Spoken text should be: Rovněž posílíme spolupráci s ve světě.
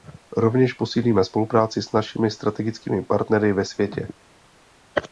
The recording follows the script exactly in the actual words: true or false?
false